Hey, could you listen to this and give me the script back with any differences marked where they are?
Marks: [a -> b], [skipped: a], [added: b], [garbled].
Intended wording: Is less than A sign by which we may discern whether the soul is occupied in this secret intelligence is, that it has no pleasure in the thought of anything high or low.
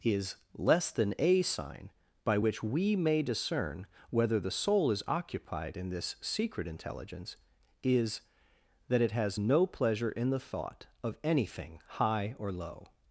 Is less than A sign by which we may discern whether the soul is occupied in this secret intelligence is, that it has no pleasure in the thought of anything high or low.